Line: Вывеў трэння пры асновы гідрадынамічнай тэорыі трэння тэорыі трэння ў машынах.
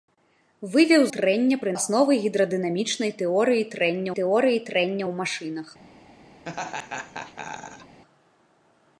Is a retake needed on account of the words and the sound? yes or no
yes